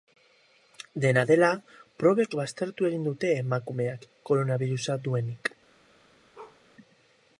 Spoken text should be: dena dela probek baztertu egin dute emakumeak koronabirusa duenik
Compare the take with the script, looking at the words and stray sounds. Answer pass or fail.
fail